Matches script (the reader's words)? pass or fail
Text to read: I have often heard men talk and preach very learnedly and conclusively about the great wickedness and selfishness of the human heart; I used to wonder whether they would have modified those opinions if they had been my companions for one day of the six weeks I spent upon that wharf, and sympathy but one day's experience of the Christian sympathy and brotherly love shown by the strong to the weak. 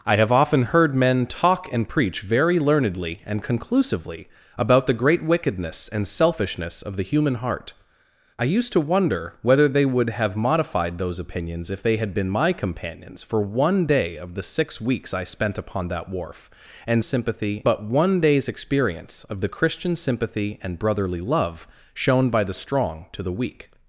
pass